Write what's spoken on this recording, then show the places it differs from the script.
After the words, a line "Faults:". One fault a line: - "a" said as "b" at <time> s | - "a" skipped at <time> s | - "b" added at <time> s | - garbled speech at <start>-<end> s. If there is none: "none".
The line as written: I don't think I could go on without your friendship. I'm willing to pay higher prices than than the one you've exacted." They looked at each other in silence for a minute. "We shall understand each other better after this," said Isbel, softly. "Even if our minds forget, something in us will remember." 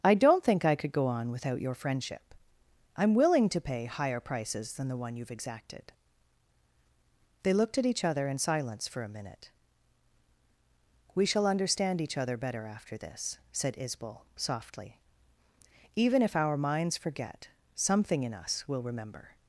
I don't think I could go on without your friendship. I'm willing to pay higher prices than the one you've exacted." They looked at each other in silence for a minute. "We shall understand each other better after this," said Isbel, softly. "Even if our minds forget, something in us will remember."
Faults:
- "than" skipped at 4.9 s